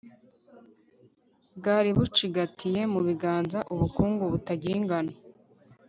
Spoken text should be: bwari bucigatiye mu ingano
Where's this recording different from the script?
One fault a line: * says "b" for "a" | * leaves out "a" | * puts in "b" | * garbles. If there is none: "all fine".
* puts in "biganza ubukungu butagira"